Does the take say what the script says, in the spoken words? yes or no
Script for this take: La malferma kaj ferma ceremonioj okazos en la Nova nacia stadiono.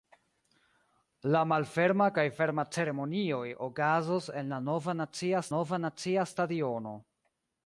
no